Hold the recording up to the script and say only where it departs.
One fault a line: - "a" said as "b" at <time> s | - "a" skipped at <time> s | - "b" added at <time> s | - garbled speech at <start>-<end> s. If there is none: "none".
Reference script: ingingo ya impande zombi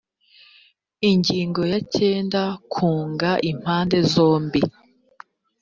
- "cyenda kunga" added at 1.9 s